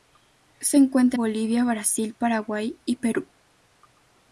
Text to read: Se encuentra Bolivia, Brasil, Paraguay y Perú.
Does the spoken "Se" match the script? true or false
true